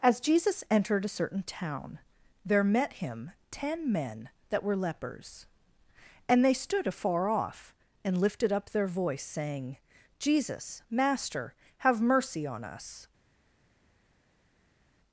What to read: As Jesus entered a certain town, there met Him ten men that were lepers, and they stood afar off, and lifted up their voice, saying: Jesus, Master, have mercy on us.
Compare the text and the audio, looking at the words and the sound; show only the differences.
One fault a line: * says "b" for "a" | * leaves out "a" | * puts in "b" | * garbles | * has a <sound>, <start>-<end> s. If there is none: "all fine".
all fine